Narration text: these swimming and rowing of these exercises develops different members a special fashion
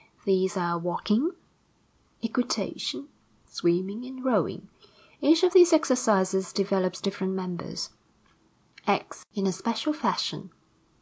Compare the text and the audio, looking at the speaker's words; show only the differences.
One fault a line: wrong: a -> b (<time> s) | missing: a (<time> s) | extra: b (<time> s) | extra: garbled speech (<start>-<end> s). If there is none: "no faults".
extra: are walking equitation (0.6 s)
extra: each (5.2 s)
extra: acts in (8.9 s)